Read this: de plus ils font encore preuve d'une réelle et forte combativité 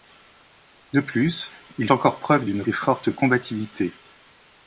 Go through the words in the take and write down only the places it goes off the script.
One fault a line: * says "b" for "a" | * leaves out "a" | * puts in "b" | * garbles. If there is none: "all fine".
* leaves out "font"
* leaves out "réelle"